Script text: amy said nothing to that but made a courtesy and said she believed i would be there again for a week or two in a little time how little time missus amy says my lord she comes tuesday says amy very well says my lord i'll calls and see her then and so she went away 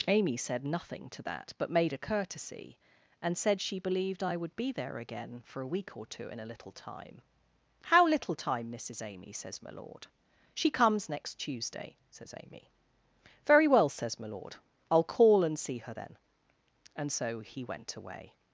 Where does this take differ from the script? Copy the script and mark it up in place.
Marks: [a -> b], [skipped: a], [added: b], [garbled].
amy said nothing to that but made a courtesy and said she believed i would be there again for a week or two in a little time how little time missus amy says my lord she comes [added: next] tuesday says amy very well says my lord i'll [calls -> call] and see her then and so [she -> he] went away